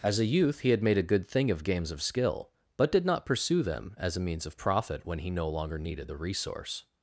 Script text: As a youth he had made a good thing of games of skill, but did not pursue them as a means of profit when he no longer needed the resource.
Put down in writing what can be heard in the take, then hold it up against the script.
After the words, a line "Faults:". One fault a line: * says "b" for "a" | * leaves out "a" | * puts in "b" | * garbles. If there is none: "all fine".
As a youth he had made a good thing of games of skill, but did not pursue them as a means of profit when he no longer needed the resource.
Faults:
all fine